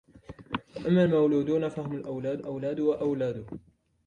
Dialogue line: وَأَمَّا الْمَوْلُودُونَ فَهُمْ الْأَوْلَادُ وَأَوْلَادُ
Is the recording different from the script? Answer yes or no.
yes